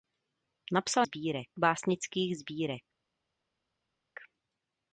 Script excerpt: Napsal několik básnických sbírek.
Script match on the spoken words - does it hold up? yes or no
no